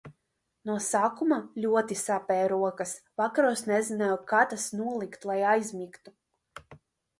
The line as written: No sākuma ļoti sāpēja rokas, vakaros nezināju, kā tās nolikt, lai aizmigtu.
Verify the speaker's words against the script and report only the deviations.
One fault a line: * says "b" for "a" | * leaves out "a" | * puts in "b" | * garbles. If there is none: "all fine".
all fine